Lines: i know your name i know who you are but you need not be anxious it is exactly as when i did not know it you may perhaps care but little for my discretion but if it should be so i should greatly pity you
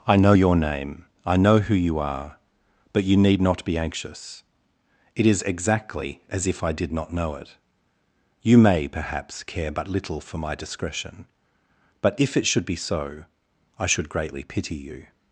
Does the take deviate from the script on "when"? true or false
true